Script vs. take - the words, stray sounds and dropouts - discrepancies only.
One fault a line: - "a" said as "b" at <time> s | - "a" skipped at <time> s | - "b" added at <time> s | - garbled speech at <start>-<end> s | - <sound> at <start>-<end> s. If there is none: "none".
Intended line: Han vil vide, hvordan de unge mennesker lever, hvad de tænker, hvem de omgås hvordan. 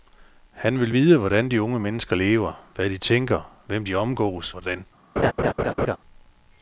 - laugh at 5.2-6.0 s